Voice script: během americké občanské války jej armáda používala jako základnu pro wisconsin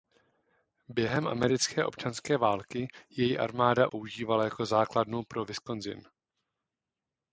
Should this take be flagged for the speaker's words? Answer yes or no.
no